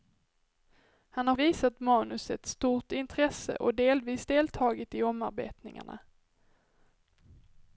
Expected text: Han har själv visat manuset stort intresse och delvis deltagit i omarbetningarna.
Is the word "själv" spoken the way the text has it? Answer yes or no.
no